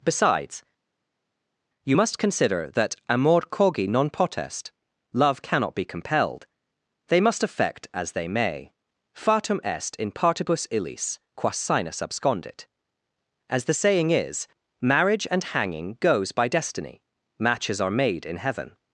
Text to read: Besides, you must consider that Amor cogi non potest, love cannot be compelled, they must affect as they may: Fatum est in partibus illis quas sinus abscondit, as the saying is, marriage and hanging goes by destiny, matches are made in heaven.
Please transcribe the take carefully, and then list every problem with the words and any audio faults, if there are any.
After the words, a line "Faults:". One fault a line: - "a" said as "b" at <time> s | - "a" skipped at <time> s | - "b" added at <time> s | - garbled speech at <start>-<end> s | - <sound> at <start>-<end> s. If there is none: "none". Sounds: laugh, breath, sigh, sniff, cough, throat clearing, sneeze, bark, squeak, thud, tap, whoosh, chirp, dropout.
Besides, you must consider that Amor cogi non potest, love cannot be compelled, they must affect as they may: Fatum est in partibus illis quas sinus abscondit, as the saying is, marriage and hanging goes by destiny, matches are made in heaven.
Faults:
none